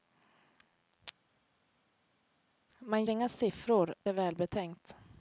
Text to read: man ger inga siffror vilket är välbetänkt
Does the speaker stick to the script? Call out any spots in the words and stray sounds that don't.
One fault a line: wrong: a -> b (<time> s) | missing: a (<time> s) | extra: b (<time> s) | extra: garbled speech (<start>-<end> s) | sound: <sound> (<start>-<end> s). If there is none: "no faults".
missing: ger (3.0 s)
missing: vilket (3.9 s)